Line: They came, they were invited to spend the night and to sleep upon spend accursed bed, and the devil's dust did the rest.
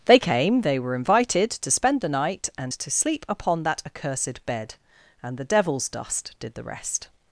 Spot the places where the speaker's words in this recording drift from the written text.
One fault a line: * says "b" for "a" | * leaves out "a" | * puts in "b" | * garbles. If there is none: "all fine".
* says "that" for "spend"